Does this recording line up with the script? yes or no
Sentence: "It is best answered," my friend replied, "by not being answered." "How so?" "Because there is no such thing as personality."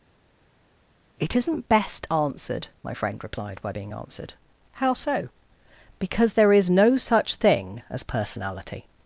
no